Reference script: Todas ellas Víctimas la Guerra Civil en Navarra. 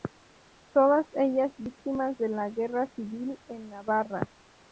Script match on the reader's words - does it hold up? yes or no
no